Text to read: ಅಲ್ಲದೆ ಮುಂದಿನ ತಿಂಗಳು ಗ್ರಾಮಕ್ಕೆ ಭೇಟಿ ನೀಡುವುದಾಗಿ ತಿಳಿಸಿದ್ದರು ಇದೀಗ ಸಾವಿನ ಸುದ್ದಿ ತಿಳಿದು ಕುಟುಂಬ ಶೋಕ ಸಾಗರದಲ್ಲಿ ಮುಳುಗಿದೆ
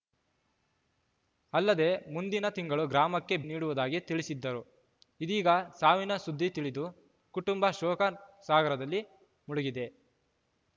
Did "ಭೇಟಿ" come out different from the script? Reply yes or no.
yes